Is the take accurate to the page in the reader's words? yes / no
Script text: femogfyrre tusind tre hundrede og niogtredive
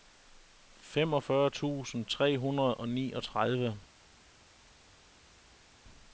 yes